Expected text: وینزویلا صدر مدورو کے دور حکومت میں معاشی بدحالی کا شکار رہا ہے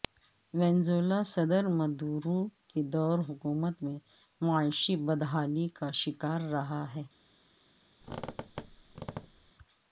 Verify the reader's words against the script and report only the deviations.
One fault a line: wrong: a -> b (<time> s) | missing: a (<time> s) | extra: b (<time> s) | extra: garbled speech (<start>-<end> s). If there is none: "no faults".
no faults